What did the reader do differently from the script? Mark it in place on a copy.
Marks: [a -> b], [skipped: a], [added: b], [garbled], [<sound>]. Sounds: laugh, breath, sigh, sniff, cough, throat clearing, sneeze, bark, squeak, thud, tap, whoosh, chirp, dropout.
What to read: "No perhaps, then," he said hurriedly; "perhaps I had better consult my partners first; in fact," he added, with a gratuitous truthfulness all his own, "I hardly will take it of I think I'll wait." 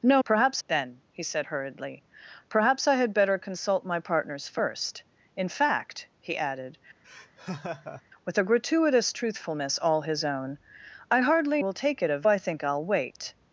"No perhaps, then," he said hurriedly; "perhaps I had better consult my partners first; in fact," he added, [laugh] with a gratuitous truthfulness all his own, "I hardly will take it of I think I'll wait."